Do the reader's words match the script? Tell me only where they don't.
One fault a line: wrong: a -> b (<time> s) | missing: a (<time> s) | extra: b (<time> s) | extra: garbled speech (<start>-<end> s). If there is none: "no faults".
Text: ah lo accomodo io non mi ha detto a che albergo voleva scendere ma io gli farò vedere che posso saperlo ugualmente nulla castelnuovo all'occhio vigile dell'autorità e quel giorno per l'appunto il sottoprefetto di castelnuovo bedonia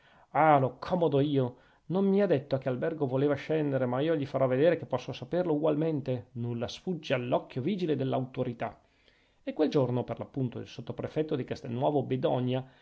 wrong: castelnuovo -> sfugge (6.7 s)